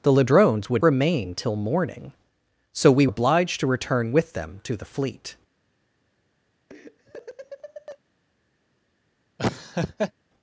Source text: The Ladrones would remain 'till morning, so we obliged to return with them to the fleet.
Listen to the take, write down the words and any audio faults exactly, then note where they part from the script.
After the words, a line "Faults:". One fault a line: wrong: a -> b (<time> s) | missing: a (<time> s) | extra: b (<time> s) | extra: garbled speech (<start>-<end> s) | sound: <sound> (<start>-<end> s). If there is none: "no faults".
The Ladrones would remain 'till morning, so we obliged to return with them to the fleet.
Faults:
sound: laugh (6.7-8.0 s)
sound: laugh (9.4-10.1 s)